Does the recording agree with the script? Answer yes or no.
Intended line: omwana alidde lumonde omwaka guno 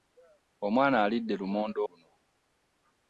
no